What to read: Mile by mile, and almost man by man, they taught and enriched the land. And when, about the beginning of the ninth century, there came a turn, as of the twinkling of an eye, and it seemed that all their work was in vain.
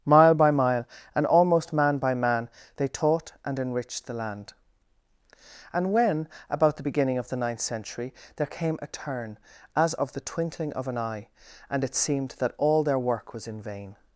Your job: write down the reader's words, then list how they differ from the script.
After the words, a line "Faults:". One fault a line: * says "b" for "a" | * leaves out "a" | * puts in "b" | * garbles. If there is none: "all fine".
Mile by mile, and almost man by man, they taught and enriched the land. And when, about the beginning of the ninth century, there came a turn, as of the twinkling of an eye, and it seemed that all their work was in vain.
Faults:
all fine